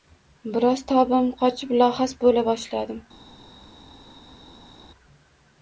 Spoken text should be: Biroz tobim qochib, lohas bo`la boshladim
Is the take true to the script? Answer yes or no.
yes